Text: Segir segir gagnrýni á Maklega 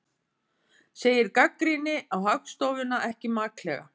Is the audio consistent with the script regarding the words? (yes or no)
no